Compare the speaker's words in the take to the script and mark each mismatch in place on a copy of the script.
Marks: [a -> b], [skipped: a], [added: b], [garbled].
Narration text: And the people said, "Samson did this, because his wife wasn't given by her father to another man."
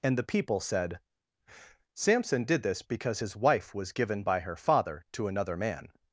And the people said, "Samson did this, because his wife [wasn't -> was] given by her father to another man."